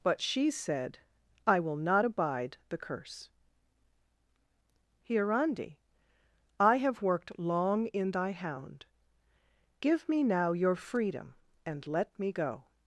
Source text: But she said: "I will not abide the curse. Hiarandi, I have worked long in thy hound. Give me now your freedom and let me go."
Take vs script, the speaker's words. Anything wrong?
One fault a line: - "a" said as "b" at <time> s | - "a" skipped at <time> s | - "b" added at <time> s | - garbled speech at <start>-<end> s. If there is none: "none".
none